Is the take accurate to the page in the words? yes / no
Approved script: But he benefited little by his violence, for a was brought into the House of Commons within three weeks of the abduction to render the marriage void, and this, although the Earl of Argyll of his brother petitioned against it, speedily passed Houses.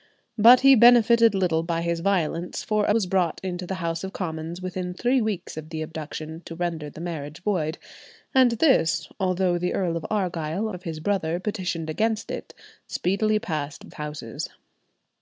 yes